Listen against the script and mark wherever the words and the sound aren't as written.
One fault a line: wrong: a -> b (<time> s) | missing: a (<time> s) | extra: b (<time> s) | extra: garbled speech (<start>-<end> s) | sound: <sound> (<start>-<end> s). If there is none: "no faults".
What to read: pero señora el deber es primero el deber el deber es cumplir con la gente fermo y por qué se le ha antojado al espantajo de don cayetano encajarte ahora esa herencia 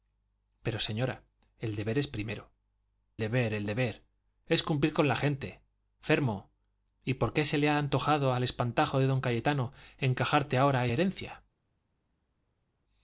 missing: el (2.5 s)
missing: esa (10.9 s)